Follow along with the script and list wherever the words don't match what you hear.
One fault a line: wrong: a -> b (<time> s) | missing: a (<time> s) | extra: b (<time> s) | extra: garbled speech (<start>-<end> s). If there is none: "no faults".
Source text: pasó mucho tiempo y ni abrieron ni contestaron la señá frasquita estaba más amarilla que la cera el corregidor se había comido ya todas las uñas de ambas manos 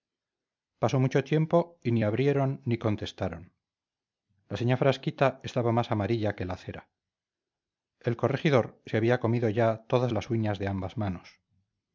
no faults